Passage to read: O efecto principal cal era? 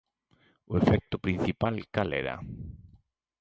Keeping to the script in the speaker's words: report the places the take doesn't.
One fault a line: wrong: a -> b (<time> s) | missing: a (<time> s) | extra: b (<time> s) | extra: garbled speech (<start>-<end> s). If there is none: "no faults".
no faults